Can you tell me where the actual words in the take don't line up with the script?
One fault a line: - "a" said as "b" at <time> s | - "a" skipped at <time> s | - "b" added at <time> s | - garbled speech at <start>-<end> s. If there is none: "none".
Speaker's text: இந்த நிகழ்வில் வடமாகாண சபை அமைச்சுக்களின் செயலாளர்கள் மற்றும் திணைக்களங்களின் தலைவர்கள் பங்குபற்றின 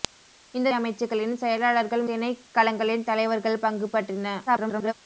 - "நிகழ்வில் வடமாகாண சபை" skipped at 0.7 s
- "மற்றும்" skipped at 2.1 s
- garbled speech at 4.5-4.9 s